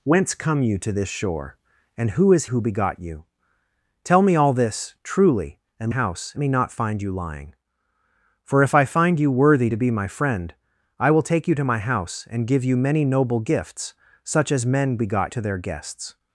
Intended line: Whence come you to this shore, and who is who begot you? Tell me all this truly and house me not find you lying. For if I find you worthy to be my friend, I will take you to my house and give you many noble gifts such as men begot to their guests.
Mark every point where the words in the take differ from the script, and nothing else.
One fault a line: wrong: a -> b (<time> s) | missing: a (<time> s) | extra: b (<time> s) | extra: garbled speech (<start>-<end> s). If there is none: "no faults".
no faults